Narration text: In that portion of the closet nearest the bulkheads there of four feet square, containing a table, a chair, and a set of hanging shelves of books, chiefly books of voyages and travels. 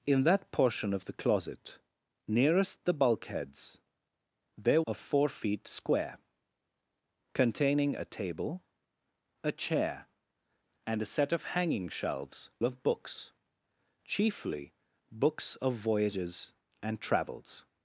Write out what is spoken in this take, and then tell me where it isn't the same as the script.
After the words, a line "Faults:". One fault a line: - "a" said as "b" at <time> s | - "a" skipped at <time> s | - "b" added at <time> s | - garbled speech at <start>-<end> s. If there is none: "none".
In that portion of the closet nearest the bulkheads there of four feet square, containing a table, a chair, and a set of hanging shelves of books, chiefly books of voyages and travels.
Faults:
none